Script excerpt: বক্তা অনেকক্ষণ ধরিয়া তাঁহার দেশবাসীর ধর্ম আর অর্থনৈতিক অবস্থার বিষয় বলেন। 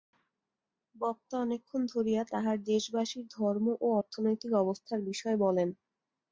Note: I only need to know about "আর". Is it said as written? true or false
false